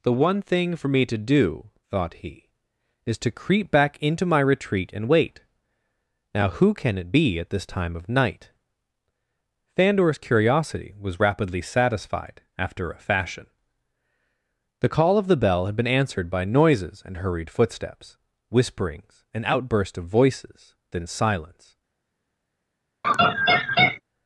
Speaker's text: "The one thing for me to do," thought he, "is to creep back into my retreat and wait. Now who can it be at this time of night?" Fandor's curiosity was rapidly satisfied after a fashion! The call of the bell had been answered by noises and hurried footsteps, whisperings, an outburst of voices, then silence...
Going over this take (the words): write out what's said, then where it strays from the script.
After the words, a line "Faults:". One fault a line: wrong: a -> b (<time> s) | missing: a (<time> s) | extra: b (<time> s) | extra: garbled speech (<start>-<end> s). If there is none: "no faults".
"The one thing for me to do," thought he, "is to creep back into my retreat and wait. Now who can it be at this time of night?" Fandor's curiosity was rapidly satisfied after a fashion! The call of the bell had been answered by noises and hurried footsteps, whisperings, an outburst of voices, then silence...
Faults:
no faults